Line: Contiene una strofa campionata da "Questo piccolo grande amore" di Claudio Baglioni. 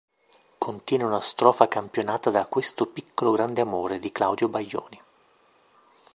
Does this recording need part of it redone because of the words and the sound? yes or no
no